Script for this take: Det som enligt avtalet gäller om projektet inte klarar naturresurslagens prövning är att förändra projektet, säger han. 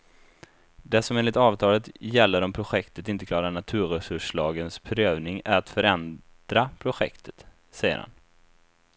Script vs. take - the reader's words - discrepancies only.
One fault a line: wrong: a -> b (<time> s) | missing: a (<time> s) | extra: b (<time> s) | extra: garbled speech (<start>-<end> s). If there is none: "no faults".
no faults